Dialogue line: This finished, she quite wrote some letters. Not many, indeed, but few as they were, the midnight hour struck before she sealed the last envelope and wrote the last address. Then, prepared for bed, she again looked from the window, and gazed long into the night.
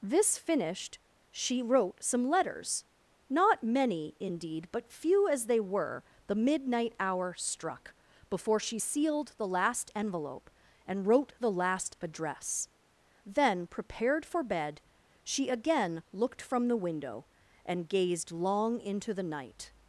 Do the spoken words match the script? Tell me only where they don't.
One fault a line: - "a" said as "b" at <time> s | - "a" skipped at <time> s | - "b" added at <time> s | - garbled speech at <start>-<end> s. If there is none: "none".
- "quite" skipped at 1.6 s